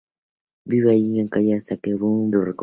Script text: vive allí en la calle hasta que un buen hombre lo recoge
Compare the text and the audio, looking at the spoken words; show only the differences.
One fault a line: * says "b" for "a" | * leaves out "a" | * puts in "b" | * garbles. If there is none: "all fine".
* leaves out "buen hombre"